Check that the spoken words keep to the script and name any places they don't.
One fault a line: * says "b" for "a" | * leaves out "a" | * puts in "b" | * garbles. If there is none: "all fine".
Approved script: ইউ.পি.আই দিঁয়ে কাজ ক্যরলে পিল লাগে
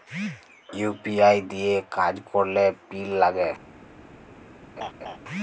all fine